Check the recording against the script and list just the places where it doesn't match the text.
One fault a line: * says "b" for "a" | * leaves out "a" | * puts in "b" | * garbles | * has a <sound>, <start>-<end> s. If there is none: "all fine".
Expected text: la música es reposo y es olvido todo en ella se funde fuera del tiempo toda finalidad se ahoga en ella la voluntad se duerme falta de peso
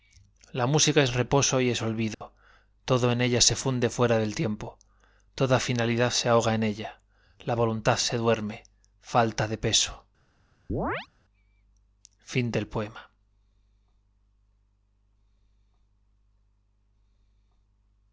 * has a dropout, 2.1-2.2 s
* has a chirp, 10.7-11.1 s